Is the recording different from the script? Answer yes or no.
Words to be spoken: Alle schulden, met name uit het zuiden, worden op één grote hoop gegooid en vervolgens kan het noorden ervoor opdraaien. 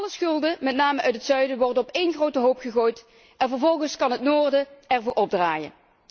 no